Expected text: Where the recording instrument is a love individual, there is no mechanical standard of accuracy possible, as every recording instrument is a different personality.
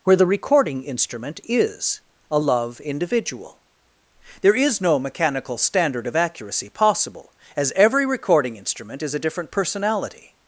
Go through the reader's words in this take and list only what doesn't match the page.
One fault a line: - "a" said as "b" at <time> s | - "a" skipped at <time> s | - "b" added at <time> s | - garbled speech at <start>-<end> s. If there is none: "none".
none